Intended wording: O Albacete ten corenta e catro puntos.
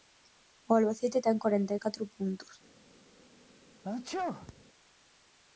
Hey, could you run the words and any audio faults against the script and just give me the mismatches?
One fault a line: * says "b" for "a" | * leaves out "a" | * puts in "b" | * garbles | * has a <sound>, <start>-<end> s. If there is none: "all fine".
* has a sneeze, 3.8-4.6 s